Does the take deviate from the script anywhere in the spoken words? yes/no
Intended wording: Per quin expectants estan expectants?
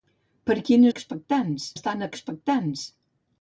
no